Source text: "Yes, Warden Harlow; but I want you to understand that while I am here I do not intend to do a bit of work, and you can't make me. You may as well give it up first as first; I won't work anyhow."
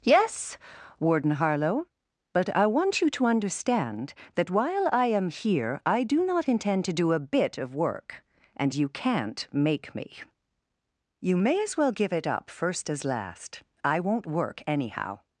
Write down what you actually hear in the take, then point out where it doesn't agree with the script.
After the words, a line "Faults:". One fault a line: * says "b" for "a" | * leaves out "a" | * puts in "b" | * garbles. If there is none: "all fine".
"Yes, Warden Harlow; but I want you to understand that while I am here I do not intend to do a bit of work, and you can't make me. You may as well give it up first as last; I won't work anyhow."
Faults:
* says "last" for "first"